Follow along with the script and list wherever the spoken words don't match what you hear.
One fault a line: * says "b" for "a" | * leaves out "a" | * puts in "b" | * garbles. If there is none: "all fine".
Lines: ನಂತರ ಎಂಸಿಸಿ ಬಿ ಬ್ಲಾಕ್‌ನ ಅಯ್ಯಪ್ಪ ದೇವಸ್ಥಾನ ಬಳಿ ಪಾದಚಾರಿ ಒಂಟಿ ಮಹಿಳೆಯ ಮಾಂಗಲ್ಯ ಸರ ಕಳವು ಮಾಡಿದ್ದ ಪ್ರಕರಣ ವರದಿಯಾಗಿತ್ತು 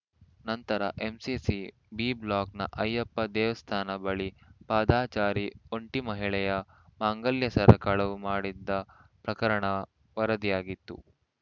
all fine